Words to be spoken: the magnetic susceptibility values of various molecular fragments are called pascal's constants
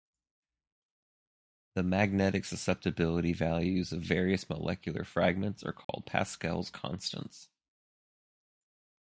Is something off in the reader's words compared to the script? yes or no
no